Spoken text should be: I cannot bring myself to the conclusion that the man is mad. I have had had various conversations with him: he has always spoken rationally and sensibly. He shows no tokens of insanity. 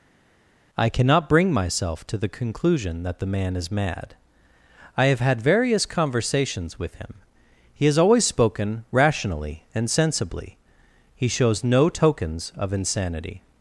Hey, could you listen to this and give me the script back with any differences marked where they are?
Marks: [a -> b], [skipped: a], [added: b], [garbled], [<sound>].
I cannot bring myself to the conclusion that the man is mad. I have had [skipped: had] various conversations with him: he has always spoken rationally and sensibly. He shows no tokens of insanity.